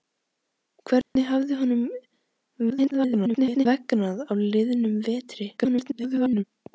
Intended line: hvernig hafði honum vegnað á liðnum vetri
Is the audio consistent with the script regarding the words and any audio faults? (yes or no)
no